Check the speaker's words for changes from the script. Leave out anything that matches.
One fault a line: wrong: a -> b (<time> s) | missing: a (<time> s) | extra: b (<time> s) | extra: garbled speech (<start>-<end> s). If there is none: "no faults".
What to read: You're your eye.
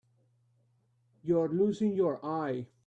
extra: losing (1.5 s)